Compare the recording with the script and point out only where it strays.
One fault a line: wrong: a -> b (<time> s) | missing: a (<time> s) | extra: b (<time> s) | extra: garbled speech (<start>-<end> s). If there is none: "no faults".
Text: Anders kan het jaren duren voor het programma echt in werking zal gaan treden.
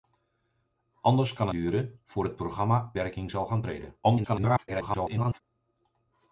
missing: het jaren (1.5 s)
missing: echt in (2.9 s)
extra: garbled speech (4.0-5.4 s)